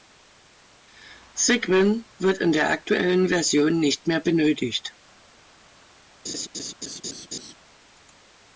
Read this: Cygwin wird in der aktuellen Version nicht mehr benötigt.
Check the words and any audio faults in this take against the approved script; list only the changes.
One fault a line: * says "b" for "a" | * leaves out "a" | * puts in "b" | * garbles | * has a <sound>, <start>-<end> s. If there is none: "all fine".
* has a laugh, 6.2-7.5 s